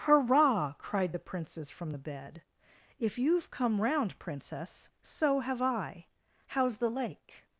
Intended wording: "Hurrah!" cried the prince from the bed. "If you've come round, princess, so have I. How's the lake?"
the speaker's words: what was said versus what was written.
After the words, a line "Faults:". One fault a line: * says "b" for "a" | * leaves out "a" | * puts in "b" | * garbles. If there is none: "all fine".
"Hurrah!" cried the princes from the bed. "If you've come round, princess, so have I. How's the lake?"
Faults:
* says "princes" for "prince"